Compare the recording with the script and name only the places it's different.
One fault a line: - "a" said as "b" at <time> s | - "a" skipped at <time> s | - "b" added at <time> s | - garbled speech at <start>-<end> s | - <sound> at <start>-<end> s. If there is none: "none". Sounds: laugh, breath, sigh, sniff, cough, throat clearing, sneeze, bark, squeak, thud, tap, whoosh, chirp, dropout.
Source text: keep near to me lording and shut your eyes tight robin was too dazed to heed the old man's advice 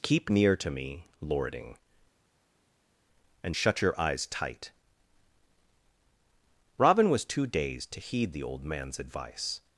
none